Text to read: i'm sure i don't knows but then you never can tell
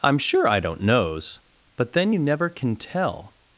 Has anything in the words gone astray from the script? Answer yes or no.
no